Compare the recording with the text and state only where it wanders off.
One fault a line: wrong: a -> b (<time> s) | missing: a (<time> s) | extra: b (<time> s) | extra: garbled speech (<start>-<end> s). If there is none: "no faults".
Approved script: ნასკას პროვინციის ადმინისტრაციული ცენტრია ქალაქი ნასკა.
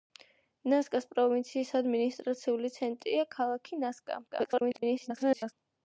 extra: garbled speech (4.3-5.5 s)